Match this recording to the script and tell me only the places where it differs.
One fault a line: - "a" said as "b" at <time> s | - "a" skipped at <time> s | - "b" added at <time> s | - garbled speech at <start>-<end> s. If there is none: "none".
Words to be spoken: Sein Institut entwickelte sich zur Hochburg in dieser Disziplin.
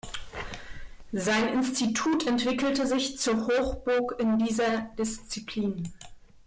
none